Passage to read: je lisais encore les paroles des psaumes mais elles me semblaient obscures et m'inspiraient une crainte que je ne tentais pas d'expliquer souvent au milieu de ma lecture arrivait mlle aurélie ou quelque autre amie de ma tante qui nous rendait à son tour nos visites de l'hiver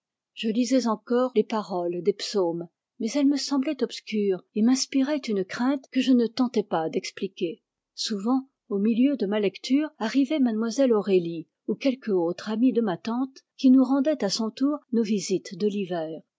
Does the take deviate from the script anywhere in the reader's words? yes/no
no